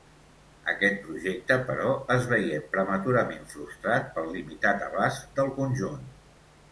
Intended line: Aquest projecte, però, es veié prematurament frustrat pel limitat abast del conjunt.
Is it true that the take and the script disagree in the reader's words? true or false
false